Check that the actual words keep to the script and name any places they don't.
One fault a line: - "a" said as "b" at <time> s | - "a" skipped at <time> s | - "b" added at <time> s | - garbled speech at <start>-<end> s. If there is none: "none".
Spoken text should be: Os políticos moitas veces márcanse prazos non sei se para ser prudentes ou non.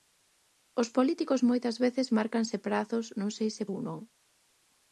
- "para ser prudentes" skipped at 3.6 s